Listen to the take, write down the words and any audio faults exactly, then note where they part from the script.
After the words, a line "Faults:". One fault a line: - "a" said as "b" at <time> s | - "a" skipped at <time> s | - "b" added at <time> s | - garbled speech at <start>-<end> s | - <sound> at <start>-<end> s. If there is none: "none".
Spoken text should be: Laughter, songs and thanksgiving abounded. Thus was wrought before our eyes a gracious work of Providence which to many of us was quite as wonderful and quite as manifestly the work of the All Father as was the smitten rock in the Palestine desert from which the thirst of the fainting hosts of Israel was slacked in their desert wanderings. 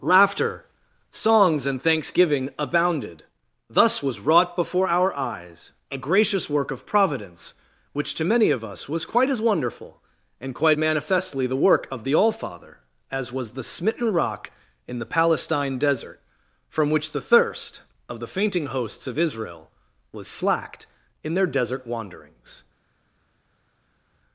Laughter, songs and thanksgiving abounded. Thus was wrought before our eyes a gracious work of Providence which to many of us was quite as wonderful and quite manifestly the work of the All Father as was the smitten rock in the Palestine desert from which the thirst of the fainting hosts of Israel was slacked in their desert wanderings.
Faults:
- "as" skipped at 10.8 s